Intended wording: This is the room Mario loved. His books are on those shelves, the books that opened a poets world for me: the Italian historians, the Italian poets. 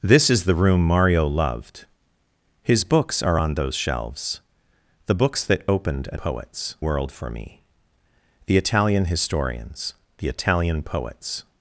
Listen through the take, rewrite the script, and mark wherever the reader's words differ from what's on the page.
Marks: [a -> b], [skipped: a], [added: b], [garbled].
This is the room Mario loved. His books are on those shelves, the books that opened a poets world for me: the Italian historians, the Italian poets.